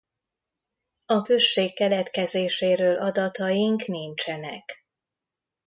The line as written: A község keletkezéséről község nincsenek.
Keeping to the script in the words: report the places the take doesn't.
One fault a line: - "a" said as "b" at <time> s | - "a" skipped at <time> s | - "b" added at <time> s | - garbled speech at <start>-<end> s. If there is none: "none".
- "község" said as "adataink" at 3.0 s